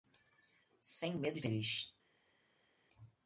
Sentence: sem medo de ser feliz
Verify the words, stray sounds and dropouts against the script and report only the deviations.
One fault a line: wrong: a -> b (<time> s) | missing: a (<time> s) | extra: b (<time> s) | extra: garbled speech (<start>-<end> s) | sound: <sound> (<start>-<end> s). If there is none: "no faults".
missing: ser (1.4 s)